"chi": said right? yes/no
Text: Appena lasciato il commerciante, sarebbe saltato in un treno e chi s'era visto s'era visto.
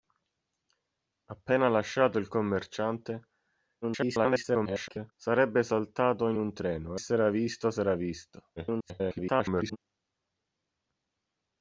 no